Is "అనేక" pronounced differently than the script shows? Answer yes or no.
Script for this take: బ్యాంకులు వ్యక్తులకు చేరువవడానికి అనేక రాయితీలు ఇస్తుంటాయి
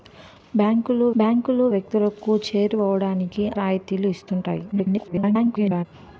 yes